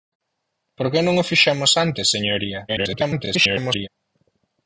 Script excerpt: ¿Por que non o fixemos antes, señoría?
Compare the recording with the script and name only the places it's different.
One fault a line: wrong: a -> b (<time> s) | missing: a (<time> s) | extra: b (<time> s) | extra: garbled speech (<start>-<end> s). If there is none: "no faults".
extra: garbled speech (2.7-3.9 s)